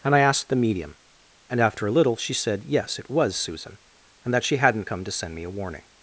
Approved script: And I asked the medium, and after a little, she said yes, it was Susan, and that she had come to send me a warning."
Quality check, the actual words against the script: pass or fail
fail